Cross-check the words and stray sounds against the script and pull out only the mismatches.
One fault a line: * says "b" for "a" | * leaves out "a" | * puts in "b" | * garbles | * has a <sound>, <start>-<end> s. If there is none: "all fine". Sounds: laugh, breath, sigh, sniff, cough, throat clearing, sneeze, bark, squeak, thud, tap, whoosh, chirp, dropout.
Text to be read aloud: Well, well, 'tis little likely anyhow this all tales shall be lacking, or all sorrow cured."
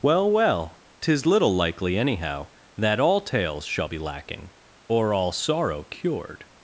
* says "that" for "this"